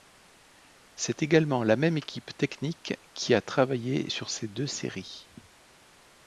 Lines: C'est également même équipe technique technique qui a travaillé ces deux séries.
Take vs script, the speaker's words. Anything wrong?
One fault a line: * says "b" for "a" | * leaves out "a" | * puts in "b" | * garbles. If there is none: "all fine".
* puts in "la"
* leaves out "technique"
* puts in "sur"